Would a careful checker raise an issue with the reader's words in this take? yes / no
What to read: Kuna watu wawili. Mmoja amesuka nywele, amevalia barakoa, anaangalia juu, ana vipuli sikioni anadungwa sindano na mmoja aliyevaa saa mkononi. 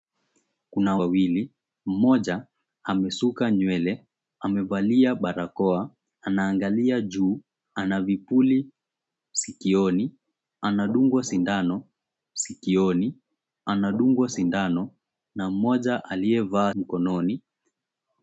yes